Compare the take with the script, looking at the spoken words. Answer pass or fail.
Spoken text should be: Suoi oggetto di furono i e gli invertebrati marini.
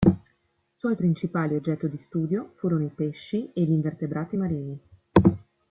fail